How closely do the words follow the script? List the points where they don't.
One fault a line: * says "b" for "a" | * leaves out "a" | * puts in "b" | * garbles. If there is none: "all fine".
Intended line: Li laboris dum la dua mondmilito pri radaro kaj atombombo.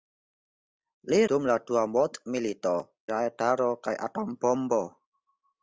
* leaves out "laboris"
* leaves out "pri"